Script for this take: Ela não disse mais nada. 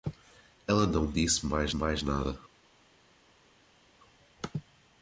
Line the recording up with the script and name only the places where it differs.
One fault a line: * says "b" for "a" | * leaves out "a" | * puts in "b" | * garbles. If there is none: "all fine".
* puts in "mais"